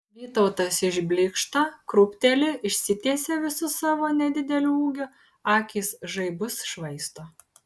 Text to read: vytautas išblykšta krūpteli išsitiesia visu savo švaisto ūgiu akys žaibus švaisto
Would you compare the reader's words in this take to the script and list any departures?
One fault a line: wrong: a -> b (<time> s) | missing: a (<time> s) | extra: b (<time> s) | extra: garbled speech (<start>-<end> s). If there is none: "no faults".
wrong: švaisto -> nedideliu (4.2 s)